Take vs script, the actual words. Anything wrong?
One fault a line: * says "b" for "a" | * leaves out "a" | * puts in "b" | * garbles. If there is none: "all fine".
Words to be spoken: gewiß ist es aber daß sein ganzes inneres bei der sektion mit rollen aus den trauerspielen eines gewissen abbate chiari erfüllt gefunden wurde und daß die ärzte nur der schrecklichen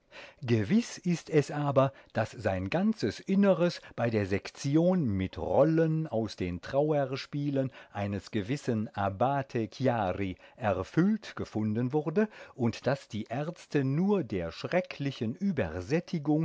all fine